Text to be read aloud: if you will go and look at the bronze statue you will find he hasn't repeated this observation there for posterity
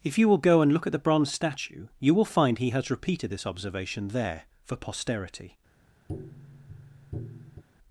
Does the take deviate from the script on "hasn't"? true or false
true